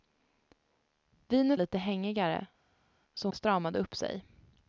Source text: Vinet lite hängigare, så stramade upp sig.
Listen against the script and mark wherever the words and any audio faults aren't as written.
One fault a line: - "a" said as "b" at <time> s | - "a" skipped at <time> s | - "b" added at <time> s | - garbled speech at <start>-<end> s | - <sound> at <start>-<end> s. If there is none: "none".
none